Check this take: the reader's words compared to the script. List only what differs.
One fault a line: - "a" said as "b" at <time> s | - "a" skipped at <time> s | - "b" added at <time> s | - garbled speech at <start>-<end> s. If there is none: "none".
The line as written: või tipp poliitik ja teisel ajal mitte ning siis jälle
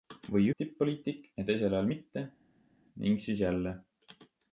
none